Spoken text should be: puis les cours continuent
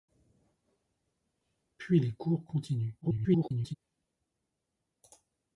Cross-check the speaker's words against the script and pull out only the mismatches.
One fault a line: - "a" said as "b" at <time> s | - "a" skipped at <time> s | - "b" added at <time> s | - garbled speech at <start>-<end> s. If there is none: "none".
- garbled speech at 3.0-3.8 s